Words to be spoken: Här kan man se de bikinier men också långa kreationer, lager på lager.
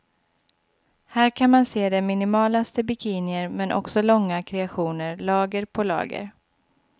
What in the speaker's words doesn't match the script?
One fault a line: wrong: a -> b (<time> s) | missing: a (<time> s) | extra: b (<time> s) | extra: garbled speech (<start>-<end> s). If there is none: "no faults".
extra: minimalaste (2.0 s)